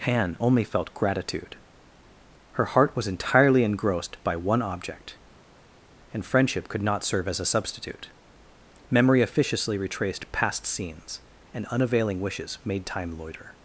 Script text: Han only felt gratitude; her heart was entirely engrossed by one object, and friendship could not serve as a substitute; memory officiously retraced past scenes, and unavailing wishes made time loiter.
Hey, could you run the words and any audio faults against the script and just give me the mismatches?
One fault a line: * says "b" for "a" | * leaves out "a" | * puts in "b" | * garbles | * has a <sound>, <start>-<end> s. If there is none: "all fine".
all fine